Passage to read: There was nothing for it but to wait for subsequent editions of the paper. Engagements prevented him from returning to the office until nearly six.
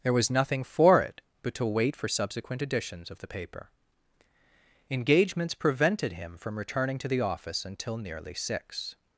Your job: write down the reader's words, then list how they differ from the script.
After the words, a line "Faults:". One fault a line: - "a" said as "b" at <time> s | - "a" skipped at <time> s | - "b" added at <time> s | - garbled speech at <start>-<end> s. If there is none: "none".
There was nothing for it but to wait for subsequent editions of the paper. Engagements prevented him from returning to the office until nearly six.
Faults:
none